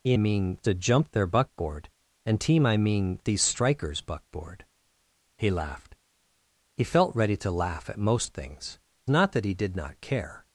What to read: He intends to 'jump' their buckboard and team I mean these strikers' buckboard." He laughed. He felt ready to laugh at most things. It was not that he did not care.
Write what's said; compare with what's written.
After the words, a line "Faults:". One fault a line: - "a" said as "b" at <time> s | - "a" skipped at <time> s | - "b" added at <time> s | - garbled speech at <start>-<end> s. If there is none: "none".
He mean to 'jump' their buckboard and team I mean these strikers' buckboard." He laughed. He felt ready to laugh at most things. Not that he did not care.
Faults:
- "intends" said as "mean" at 0.1 s
- "It was" skipped at 8.8 s